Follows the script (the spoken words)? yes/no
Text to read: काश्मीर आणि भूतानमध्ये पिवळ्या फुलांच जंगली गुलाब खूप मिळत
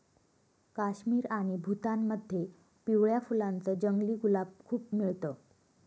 yes